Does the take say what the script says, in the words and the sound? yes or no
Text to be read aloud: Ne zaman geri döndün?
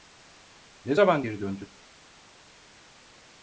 yes